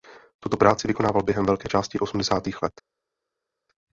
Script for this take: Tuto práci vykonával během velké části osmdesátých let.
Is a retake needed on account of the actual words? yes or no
no